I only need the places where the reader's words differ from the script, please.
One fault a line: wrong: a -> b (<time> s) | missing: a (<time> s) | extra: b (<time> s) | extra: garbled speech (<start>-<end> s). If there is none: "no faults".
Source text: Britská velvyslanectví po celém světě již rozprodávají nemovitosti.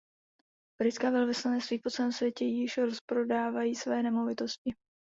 extra: své (3.7 s)